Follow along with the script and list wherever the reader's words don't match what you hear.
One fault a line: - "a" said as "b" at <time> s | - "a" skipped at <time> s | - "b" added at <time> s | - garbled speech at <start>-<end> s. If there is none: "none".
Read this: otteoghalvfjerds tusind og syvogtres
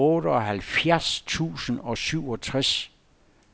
none